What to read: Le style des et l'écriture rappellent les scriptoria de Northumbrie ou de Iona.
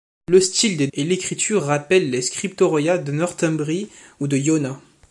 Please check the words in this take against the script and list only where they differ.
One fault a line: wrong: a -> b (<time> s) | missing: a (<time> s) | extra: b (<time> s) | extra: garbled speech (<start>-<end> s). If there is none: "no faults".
no faults